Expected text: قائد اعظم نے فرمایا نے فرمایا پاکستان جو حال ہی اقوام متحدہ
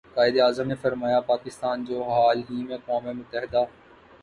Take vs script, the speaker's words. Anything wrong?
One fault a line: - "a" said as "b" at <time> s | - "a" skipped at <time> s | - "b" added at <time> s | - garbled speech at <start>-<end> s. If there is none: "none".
- "نے فرمایا" skipped at 1.2 s
- "میں" added at 2.6 s